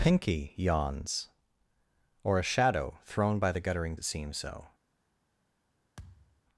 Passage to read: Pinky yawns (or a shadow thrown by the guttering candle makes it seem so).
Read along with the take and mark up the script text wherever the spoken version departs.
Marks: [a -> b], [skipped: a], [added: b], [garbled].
Pinky yawns (or a shadow thrown by the guttering [skipped: candle makes] it seem so).